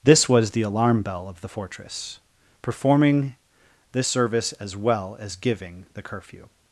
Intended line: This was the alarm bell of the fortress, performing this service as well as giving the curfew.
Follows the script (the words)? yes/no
yes